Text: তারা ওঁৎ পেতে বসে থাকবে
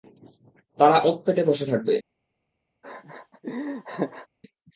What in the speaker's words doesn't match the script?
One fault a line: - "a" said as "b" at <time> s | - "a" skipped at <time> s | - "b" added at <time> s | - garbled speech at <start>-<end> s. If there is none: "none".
none